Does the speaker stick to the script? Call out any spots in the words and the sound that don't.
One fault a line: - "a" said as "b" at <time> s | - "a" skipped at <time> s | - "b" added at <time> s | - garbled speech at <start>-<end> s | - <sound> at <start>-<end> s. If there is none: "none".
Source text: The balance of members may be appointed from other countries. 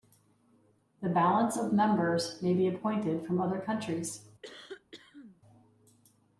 - cough at 4.4-5.4 s